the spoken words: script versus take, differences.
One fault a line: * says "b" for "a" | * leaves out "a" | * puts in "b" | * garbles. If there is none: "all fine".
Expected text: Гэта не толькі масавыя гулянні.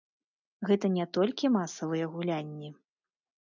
all fine